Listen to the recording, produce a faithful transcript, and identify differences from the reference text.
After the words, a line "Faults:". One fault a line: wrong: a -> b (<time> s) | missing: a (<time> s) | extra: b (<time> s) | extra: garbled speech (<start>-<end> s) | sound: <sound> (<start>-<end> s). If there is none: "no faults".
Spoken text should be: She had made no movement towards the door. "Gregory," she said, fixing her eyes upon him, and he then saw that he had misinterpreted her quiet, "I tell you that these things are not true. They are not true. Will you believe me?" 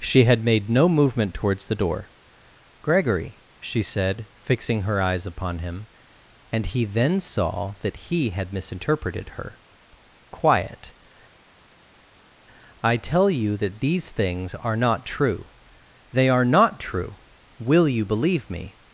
She had made no movement towards the door. "Gregory," she said, fixing her eyes upon him, and he then saw that he had misinterpreted her quiet, "I tell you that these things are not true. They are not true. Will you believe me?"
Faults:
no faults